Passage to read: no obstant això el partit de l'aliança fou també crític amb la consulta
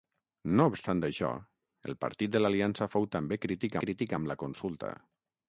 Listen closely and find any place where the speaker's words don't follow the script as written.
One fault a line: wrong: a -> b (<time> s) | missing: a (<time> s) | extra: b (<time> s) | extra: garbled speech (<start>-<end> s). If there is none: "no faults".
extra: crític (3.8 s)